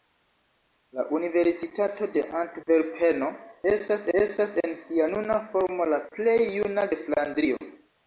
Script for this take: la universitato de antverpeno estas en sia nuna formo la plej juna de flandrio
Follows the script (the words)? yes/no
no